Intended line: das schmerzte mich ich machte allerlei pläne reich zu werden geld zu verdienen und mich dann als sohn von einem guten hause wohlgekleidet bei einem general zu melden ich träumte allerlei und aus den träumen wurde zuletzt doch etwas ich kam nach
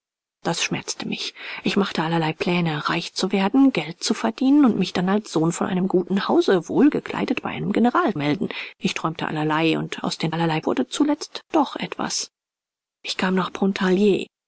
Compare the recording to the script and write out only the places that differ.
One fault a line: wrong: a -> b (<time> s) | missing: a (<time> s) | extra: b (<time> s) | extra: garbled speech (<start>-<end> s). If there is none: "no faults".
missing: zu (8.2 s)
wrong: träumen -> allerlei (10.3 s)